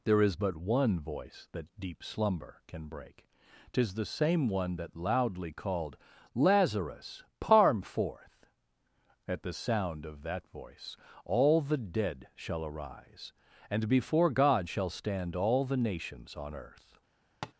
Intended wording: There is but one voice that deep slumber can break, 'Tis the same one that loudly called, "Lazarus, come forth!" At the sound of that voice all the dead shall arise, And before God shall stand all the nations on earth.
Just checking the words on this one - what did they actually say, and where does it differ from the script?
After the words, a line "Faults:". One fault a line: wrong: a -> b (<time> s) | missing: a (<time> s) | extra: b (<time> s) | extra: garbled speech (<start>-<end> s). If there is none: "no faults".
There is but one voice that deep slumber can break, 'Tis the same one that loudly called, "Lazarus, parm forth!" At the sound of that voice all the dead shall arise, And before God shall stand all the nations on earth.
Faults:
wrong: come -> parm (7.4 s)